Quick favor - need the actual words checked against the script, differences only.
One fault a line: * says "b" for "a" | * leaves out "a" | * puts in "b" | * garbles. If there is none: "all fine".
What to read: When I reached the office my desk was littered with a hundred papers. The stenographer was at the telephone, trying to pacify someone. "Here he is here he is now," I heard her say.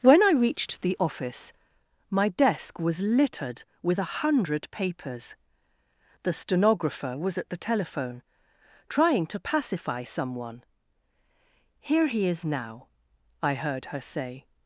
* leaves out "here he is"